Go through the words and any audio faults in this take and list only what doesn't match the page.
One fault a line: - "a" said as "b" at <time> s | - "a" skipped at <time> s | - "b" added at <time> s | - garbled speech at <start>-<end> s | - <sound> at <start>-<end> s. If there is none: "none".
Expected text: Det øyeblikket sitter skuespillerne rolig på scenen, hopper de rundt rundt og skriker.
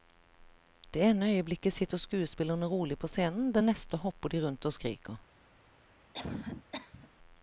- "ene" added at 1.1 s
- "det neste" added at 3.5 s
- "rundt" skipped at 4.7 s
- cough at 6.1-7.1 s